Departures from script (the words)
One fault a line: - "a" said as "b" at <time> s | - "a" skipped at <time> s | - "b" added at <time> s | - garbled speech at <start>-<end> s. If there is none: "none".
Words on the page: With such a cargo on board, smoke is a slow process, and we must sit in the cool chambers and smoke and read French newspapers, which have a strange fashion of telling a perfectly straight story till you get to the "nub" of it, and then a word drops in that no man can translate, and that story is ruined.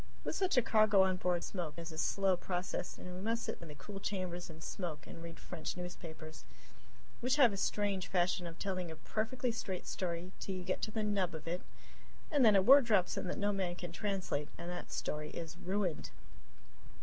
none